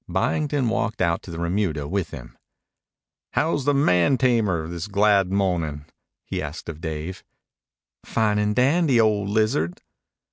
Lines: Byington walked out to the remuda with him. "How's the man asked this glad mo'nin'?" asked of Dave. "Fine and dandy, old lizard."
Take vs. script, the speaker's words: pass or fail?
fail